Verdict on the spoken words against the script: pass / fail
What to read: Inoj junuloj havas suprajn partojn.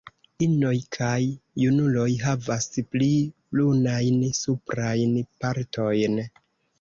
fail